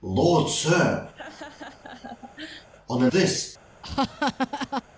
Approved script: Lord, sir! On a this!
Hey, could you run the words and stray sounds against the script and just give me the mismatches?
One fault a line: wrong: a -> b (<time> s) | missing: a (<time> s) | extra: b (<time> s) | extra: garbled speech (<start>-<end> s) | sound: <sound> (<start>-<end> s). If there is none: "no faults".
sound: laugh (1.1-2.7 s)
sound: laugh (3.8-4.8 s)